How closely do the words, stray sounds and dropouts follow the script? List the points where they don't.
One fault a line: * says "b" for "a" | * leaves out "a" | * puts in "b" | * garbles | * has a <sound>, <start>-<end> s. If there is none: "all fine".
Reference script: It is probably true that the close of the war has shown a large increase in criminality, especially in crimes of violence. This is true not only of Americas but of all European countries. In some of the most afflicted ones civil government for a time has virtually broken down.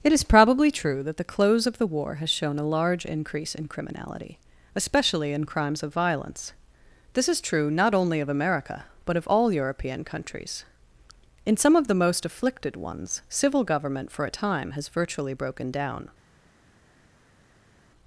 * says "America" for "Americas"